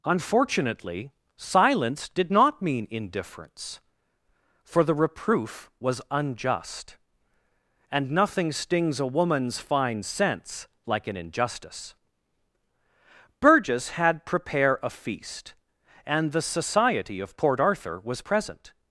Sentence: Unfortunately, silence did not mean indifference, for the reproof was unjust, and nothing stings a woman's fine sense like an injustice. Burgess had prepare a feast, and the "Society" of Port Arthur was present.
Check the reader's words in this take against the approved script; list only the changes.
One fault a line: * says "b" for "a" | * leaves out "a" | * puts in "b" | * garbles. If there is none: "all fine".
all fine